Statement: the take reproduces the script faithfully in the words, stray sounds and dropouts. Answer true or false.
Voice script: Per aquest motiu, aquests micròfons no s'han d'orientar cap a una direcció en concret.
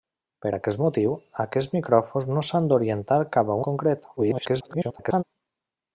false